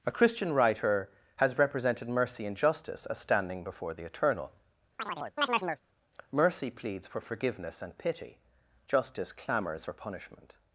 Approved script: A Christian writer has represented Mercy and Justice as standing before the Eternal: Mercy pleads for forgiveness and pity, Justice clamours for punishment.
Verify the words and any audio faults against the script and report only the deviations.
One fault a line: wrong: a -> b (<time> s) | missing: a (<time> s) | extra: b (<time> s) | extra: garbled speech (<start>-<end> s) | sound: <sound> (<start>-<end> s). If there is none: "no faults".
sound: chirp (5.0-5.8 s)